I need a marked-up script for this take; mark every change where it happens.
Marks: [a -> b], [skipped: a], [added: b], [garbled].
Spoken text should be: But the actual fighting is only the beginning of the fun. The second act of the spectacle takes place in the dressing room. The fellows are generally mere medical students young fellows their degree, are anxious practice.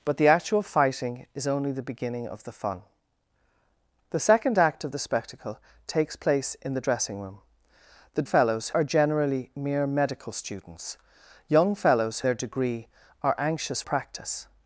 But the actual fighting is only the beginning of the fun. The second act of the spectacle takes place in the dressing room. The fellows are generally mere medical students young fellows their degree, are anxious practice.